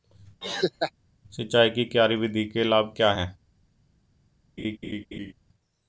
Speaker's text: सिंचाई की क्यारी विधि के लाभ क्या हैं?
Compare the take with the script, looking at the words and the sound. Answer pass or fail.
fail